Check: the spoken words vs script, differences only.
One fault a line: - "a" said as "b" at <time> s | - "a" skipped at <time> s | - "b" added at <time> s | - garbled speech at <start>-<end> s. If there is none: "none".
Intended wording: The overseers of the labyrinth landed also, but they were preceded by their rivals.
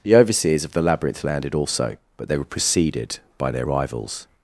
none